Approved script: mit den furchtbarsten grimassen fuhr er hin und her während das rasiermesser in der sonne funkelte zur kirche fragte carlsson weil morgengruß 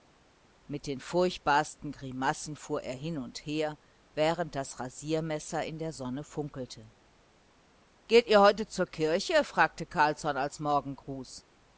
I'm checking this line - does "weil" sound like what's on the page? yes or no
no